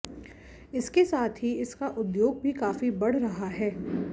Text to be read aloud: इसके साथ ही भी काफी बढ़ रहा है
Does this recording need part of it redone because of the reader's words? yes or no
yes